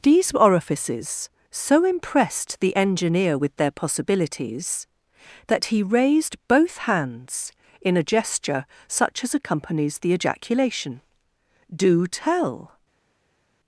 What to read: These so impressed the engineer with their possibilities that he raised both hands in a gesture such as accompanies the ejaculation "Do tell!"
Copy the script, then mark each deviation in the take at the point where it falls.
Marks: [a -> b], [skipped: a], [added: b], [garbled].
These [added: orifices] so impressed the engineer with their possibilities that he raised both hands in a gesture such as accompanies the ejaculation "Do tell!"